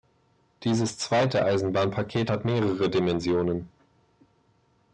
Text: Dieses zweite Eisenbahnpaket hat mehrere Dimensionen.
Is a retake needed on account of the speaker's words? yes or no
no